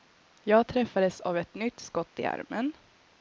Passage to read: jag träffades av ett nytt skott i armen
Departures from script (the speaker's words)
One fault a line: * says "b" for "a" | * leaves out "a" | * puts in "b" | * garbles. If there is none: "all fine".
all fine